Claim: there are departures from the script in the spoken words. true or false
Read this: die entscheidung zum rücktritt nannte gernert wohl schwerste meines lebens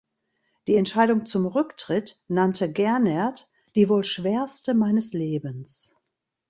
true